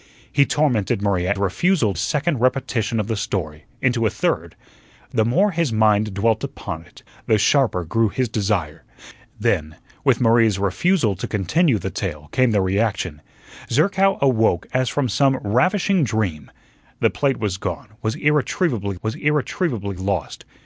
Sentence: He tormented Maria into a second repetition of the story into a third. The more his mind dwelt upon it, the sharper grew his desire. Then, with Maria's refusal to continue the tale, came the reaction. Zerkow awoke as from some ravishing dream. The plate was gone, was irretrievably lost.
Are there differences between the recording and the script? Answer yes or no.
yes